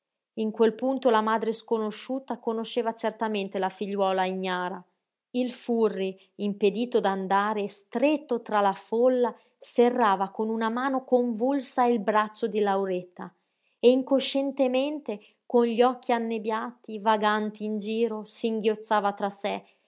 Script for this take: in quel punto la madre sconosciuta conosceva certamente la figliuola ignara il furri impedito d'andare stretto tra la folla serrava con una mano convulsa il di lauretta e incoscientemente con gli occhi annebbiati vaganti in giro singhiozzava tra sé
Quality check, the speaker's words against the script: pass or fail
fail